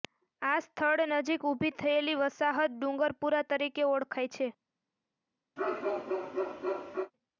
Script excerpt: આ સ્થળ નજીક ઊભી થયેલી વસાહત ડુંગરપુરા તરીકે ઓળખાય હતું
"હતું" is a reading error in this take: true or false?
true